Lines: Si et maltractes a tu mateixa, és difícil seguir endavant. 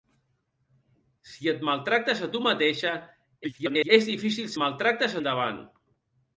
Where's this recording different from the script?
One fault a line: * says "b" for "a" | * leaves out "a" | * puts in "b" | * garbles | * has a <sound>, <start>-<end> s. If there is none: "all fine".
* garbles
* says "maltractes" for "seguir"